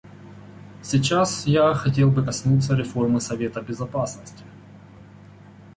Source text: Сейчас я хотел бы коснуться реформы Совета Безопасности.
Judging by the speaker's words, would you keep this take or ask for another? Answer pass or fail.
pass